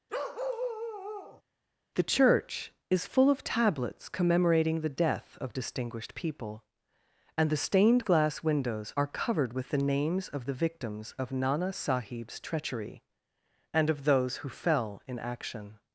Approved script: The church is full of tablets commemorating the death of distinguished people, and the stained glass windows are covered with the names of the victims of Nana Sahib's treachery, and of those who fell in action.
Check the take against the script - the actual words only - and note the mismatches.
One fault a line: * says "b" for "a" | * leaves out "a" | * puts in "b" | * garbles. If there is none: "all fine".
all fine